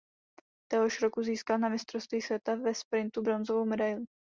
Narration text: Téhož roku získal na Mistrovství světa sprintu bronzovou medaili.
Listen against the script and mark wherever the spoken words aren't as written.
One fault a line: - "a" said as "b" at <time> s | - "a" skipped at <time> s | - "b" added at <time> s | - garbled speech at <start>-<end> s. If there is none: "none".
- "ve" added at 2.5 s